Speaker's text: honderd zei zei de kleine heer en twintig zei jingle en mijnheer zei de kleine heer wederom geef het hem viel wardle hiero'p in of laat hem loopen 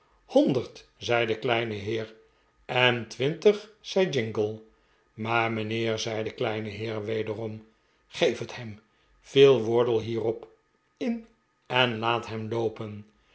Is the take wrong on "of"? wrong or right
wrong